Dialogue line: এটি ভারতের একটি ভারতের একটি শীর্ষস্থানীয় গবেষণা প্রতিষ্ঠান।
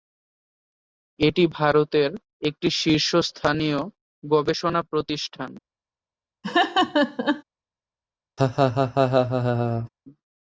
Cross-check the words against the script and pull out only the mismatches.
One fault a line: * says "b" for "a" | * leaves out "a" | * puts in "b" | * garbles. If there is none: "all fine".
* leaves out "ভারতের একটি"